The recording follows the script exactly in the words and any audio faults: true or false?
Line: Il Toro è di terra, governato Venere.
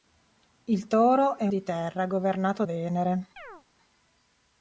false